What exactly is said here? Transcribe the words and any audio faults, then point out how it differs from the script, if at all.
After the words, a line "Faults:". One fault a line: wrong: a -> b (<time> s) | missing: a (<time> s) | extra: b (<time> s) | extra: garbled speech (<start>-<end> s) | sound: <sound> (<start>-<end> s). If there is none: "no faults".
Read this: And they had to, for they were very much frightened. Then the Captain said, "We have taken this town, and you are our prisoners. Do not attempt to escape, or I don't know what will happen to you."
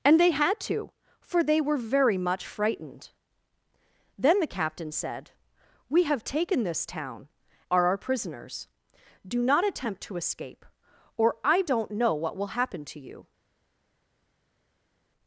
And they had to, for they were very much frightened. Then the Captain said, "We have taken this town, are our prisoners. Do not attempt to escape, or I don't know what will happen to you."
Faults:
missing: and you (7.3 s)